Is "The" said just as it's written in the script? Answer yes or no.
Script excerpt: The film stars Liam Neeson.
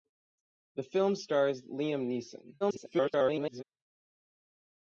yes